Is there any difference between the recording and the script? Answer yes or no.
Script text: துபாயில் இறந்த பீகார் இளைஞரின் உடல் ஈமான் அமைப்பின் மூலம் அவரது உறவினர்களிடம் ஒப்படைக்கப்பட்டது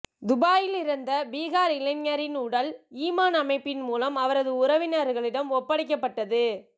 no